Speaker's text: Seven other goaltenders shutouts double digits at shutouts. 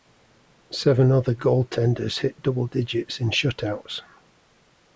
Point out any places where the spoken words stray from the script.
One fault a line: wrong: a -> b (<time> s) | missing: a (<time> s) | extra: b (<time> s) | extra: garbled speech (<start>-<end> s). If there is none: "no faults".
wrong: shutouts -> hit (2.2 s)
wrong: at -> in (3.2 s)